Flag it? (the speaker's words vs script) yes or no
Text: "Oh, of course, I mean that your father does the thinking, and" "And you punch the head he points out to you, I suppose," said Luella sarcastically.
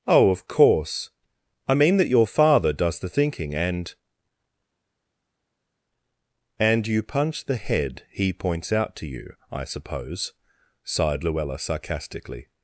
yes